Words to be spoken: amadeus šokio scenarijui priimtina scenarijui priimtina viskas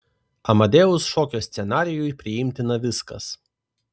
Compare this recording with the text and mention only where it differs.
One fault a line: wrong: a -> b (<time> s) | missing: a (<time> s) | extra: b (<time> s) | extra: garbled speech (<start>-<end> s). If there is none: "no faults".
missing: scenarijui priimtina (2.8 s)